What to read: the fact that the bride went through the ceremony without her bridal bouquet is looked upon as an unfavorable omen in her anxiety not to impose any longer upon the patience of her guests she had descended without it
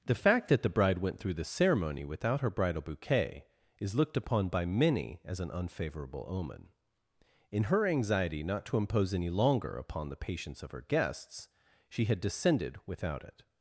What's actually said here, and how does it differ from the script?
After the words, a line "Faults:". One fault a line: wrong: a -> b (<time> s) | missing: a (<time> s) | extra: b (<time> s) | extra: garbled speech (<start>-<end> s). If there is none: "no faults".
the fact that the bride went through the ceremony without her bridal bouquet is looked upon by many as an unfavorable omen in her anxiety not to impose any longer upon the patience of her guests she had descended without it
Faults:
extra: by many (4.5 s)